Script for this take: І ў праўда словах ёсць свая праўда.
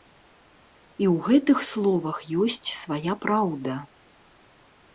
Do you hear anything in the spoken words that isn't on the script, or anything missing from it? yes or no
yes